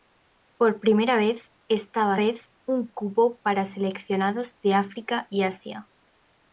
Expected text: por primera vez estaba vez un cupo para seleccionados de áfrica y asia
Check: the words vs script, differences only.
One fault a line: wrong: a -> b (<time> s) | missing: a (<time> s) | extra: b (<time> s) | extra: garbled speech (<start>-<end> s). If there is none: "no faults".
no faults